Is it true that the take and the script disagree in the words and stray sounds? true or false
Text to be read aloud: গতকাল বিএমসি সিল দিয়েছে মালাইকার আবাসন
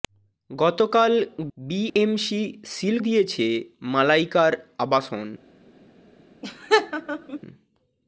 true